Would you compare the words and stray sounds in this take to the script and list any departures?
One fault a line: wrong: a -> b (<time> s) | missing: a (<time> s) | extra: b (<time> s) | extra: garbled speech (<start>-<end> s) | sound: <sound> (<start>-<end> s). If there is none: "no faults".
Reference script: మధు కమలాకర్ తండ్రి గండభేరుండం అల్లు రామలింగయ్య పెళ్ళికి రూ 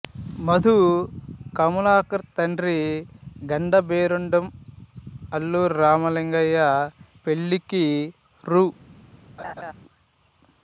sound: laugh (9.4-9.7 s)